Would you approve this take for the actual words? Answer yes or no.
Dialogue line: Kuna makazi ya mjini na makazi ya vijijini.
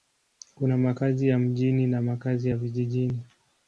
yes